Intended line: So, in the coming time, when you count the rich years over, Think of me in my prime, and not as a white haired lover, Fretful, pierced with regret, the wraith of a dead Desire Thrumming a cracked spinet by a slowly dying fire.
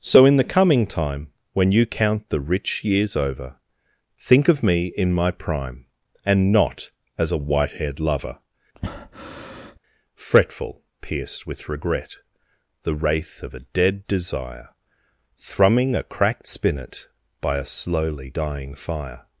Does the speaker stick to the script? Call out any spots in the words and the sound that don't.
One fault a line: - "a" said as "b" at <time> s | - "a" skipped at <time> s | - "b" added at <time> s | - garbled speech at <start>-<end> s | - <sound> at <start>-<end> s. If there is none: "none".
- breath at 8.7-9.8 s